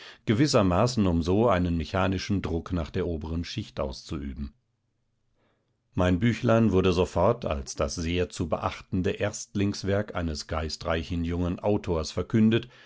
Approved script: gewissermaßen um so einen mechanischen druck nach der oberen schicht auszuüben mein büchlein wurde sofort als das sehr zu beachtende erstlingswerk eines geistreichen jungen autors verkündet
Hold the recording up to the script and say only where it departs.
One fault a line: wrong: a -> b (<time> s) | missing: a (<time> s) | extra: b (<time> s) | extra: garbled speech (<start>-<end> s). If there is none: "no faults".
no faults